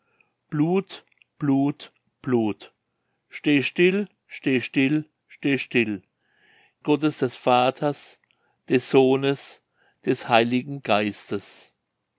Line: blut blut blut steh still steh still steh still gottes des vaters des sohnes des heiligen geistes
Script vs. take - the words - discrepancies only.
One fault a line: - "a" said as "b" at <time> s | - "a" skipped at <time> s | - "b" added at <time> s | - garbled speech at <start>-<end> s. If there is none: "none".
none